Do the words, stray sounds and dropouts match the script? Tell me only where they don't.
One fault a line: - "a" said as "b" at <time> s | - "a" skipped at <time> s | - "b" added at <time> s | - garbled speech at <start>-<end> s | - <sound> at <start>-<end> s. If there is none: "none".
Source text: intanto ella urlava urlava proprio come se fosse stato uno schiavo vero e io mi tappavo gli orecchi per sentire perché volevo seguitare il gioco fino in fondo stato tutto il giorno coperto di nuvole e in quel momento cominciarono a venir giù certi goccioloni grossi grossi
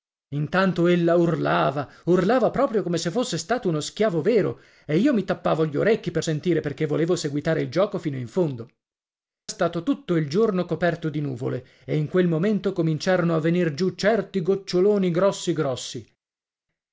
none